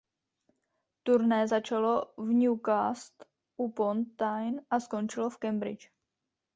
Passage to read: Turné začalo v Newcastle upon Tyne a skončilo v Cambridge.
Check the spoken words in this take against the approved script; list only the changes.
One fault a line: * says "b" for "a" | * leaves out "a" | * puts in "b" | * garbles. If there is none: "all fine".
all fine